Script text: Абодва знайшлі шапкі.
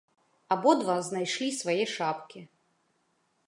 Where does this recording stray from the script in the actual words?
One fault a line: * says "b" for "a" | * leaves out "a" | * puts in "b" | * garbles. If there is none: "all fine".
* puts in "свае"